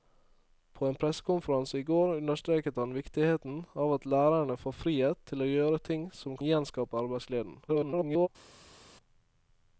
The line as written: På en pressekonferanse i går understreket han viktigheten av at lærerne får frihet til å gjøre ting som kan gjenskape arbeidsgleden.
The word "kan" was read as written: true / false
false